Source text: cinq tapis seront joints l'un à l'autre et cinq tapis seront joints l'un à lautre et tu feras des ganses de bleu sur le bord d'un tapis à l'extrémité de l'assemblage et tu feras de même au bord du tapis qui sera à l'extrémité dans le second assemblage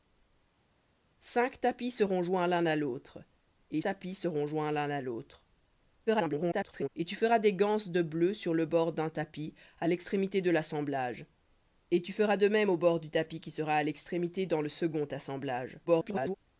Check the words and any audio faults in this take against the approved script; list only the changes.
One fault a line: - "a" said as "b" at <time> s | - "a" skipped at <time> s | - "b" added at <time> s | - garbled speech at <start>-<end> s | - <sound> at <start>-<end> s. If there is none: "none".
- "cinq" skipped at 3.8 s
- garbled speech at 6.1-6.9 s
- garbled speech at 15.9-16.3 s